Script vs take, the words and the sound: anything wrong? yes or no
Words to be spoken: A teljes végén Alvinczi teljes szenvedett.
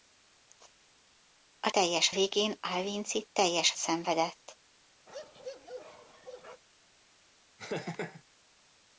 yes